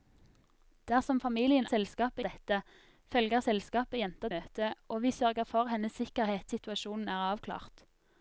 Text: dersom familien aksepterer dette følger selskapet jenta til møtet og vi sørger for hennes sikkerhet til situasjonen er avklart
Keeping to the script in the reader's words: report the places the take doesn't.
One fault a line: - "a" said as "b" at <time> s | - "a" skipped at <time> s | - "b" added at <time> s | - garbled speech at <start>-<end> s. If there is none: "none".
- "aksepterer" said as "selskapet" at 1.7 s
- "til" skipped at 4.3 s
- "til" skipped at 6.5 s